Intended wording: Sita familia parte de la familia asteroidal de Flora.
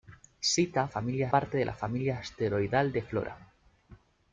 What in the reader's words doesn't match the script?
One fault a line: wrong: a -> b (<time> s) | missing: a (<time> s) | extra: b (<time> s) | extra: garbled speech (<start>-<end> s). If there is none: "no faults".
no faults